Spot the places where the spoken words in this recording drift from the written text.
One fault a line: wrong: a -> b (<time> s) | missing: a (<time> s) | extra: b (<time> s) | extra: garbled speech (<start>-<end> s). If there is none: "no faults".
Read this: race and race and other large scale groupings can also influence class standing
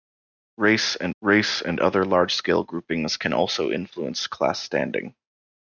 no faults